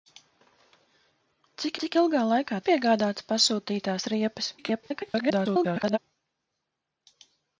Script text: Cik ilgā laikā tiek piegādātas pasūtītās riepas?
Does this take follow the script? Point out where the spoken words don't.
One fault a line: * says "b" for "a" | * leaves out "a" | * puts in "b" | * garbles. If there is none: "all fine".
* puts in "cik"
* leaves out "tiek"
* garbles